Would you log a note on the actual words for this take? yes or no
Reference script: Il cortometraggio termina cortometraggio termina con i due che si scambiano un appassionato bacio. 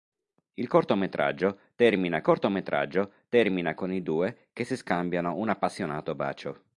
no